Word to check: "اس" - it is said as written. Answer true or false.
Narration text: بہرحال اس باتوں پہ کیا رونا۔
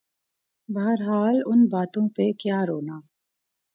false